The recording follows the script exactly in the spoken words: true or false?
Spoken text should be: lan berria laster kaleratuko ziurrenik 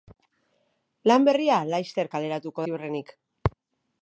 true